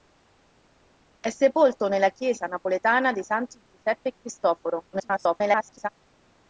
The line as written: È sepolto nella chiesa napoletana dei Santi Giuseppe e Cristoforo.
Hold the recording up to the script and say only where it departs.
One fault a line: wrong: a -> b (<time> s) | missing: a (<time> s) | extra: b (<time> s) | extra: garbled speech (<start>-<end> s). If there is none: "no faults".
extra: garbled speech (4.9-5.9 s)